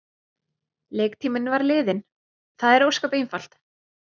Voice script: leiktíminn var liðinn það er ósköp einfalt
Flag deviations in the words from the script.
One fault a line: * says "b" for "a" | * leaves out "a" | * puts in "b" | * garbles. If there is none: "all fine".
all fine